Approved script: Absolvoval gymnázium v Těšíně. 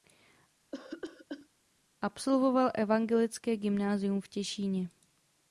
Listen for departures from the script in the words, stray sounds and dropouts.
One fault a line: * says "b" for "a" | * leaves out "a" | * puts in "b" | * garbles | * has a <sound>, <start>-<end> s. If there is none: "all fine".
* has a cough, 0.7-1.5 s
* puts in "evangelické"